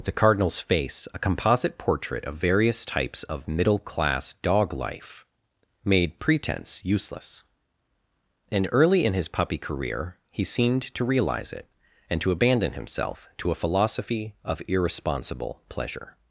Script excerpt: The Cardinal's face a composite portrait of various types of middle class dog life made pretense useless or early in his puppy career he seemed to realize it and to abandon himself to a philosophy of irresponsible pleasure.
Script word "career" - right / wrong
right